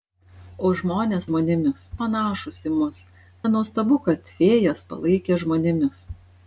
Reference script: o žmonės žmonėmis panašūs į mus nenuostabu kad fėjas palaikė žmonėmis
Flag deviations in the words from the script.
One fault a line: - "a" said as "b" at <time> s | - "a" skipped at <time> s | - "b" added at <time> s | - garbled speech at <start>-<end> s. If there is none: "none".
none